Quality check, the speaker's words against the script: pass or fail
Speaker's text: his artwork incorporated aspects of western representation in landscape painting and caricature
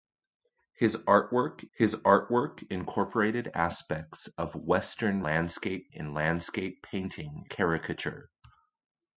fail